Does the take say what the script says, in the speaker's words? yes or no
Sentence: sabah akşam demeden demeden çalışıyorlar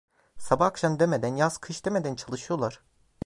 no